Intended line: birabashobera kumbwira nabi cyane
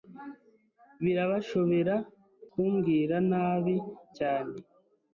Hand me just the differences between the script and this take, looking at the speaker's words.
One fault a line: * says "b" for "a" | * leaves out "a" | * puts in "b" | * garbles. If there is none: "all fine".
all fine